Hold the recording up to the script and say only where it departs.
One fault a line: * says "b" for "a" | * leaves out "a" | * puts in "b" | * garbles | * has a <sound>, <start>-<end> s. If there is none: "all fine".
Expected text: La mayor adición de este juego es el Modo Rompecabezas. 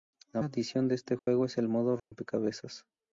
* leaves out "mayor"
* has a dropout, 1.2-1.3 s
* has a dropout, 2.0-2.1 s